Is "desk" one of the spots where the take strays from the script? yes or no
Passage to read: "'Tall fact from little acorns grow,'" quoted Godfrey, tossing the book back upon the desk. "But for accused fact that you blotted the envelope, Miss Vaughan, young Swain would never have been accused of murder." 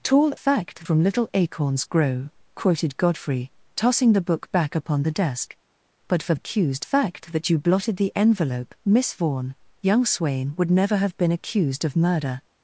no